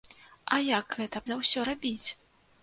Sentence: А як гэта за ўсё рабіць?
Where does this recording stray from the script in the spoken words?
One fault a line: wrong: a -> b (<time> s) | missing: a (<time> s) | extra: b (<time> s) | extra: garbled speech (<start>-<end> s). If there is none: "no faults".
no faults